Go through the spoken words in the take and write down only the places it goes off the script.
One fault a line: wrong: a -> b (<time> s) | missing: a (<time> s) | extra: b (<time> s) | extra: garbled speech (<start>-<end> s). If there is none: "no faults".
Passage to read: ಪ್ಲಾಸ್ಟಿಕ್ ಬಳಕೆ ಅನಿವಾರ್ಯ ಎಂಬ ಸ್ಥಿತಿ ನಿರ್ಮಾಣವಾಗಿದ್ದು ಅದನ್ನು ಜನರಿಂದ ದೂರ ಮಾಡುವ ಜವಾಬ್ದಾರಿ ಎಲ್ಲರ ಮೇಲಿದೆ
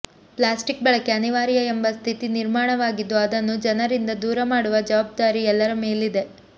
no faults